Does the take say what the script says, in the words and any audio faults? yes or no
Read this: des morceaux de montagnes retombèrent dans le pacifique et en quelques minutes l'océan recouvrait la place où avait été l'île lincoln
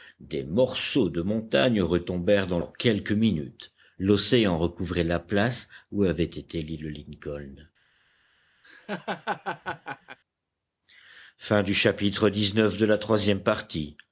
no